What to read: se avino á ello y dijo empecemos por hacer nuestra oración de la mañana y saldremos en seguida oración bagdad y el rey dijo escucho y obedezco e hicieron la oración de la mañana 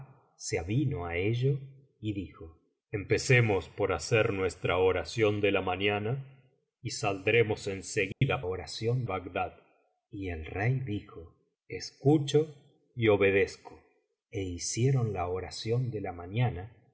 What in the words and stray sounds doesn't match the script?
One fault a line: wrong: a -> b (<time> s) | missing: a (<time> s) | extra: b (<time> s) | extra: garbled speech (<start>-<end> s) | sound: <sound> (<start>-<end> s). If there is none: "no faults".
sound: dropout (8.1-8.2 s)